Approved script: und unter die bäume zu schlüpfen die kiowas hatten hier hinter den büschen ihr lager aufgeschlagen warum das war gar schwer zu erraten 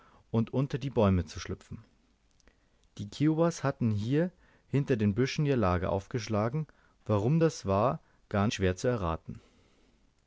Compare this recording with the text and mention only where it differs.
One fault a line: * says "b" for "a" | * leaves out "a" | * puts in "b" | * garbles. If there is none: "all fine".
all fine